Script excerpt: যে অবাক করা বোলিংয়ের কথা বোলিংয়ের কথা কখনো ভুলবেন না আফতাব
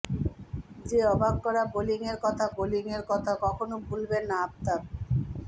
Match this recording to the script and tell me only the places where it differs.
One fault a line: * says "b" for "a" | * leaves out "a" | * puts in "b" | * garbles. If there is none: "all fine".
all fine